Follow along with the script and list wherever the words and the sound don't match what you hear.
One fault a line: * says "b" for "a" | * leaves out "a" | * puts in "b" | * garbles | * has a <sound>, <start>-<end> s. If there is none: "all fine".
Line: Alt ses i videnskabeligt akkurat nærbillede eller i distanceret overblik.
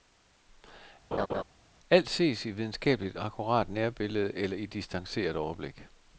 * has a laugh, 1.1-1.4 s